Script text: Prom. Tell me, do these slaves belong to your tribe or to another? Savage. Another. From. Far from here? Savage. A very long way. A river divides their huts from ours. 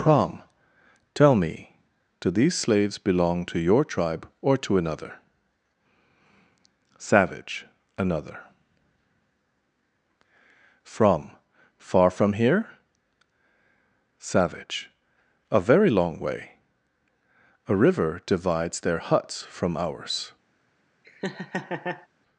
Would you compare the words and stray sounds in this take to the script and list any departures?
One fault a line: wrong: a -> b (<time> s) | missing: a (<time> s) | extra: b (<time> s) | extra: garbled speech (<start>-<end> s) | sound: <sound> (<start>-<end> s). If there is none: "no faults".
sound: laugh (21.0-22.1 s)